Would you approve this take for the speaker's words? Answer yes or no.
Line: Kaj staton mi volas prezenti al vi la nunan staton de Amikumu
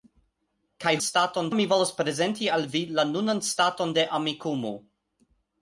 yes